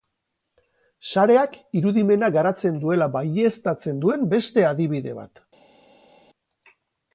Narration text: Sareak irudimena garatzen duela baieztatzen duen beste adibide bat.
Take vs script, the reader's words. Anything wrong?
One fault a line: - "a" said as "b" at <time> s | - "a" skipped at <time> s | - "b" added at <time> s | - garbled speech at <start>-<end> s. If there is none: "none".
none